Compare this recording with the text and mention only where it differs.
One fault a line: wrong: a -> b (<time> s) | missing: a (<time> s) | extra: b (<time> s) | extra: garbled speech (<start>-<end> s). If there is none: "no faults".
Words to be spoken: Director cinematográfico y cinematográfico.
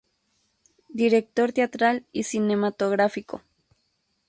wrong: cinematográfico -> teatral (1.5 s)